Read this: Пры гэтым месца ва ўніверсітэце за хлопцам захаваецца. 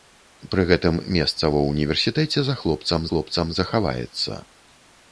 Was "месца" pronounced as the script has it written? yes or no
yes